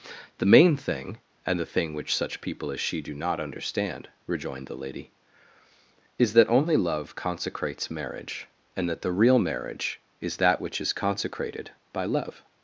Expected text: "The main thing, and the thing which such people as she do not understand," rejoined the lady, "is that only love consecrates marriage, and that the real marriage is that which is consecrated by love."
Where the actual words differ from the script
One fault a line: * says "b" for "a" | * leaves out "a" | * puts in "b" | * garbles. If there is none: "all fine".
all fine